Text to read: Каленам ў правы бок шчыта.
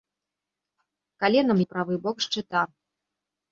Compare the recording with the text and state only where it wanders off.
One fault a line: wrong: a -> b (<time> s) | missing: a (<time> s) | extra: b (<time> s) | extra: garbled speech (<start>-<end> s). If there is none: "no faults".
no faults